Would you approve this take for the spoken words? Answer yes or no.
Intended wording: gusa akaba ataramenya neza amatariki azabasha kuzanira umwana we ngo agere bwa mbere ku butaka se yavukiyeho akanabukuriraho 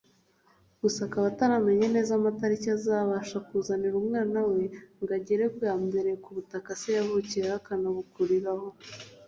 yes